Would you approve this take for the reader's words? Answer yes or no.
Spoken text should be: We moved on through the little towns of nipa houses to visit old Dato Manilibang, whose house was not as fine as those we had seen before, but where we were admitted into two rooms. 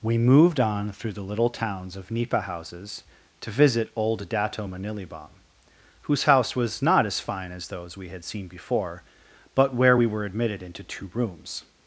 yes